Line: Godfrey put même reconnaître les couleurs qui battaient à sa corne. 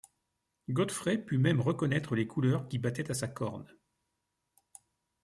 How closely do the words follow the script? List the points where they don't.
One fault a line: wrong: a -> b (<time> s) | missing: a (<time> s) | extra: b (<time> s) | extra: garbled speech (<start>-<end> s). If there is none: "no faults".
no faults